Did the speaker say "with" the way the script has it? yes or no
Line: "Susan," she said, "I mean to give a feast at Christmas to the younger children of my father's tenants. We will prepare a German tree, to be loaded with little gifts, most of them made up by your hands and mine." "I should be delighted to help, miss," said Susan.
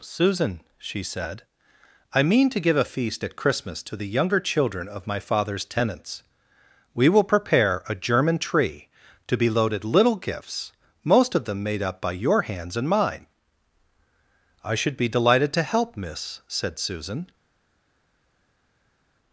no